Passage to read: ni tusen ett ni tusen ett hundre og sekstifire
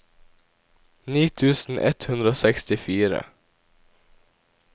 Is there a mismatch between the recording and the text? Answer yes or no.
yes